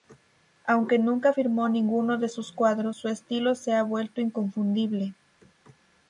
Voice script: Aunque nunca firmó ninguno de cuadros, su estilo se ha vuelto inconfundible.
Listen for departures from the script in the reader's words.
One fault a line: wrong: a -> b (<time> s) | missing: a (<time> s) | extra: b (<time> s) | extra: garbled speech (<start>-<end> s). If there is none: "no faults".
extra: sus (2.3 s)